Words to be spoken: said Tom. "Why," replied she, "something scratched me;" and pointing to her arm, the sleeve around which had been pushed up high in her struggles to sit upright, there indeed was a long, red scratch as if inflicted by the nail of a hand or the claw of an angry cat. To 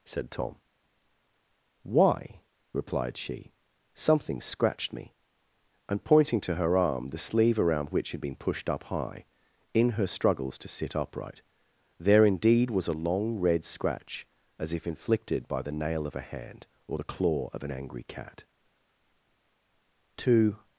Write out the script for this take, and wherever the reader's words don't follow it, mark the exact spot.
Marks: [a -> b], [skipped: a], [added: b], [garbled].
said Tom. "Why," replied she, "something scratched me;" and pointing to her arm, the sleeve around which had been pushed up high in her struggles to sit upright, there indeed was a long, red scratch as if inflicted by the nail of a hand or the claw of an angry cat. To